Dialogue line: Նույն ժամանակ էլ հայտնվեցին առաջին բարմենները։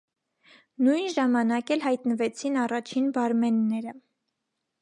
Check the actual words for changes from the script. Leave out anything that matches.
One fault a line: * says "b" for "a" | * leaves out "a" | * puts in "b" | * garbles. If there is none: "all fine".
all fine